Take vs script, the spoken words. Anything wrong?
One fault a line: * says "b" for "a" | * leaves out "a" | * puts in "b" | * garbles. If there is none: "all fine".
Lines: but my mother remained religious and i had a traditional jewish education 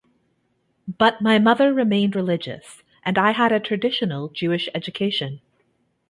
all fine